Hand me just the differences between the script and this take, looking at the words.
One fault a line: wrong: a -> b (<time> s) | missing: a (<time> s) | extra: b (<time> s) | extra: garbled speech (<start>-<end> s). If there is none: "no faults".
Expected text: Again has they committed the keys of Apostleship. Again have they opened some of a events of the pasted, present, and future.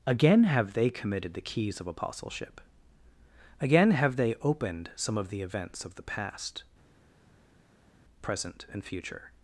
wrong: has -> have (0.5 s)
wrong: a -> the (5.3 s)
wrong: pasted -> past (6.0 s)